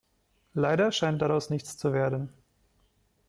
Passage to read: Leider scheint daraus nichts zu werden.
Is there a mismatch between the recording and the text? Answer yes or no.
no